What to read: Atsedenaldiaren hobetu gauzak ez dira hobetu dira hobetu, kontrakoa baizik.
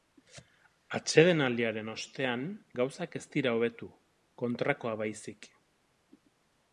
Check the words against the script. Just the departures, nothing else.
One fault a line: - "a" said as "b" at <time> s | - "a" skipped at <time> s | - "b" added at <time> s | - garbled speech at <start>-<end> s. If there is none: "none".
- "hobetu" said as "ostean" at 1.9 s
- "dira hobetu" skipped at 3.9 s